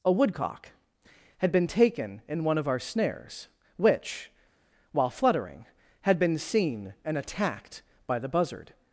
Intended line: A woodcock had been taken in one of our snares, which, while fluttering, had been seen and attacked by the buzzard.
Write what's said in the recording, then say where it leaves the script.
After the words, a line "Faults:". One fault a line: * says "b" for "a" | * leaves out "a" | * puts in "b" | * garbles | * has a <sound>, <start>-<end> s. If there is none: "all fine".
A woodcock had been taken in one of our snares, which, while fluttering, had been seen and attacked by the buzzard.
Faults:
all fine